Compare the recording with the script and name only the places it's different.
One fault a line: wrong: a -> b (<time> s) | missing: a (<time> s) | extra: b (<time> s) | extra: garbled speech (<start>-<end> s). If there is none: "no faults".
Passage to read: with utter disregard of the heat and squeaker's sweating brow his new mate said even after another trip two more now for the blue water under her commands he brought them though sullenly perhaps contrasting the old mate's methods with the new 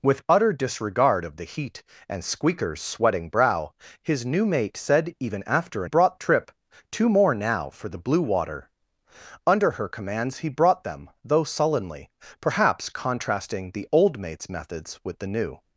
wrong: another -> brought (5.8 s)